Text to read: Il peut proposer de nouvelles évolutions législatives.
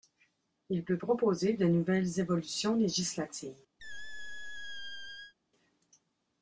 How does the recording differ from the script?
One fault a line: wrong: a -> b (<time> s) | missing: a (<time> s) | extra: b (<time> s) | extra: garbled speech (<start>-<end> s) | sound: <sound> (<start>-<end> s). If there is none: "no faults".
sound: squeak (3.8-5.3 s)